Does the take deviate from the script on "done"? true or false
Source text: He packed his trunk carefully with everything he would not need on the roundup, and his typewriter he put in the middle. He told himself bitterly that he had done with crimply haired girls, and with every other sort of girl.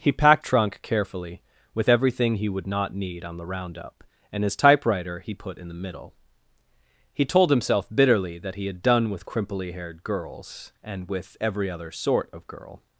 false